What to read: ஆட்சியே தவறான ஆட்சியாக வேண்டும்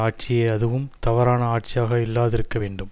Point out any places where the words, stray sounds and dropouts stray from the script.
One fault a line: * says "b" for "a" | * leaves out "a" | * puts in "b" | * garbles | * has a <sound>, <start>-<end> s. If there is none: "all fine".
* puts in "அதுவும்"
* puts in "இல்லாதிருக்க"